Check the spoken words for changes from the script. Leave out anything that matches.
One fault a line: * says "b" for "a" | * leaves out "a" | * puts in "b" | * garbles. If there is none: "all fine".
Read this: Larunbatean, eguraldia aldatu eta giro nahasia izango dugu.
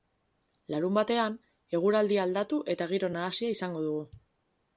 all fine